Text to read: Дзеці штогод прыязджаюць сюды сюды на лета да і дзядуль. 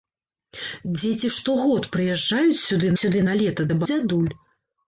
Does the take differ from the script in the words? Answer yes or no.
no